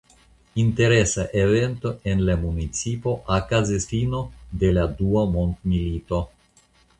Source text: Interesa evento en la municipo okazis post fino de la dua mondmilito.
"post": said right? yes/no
no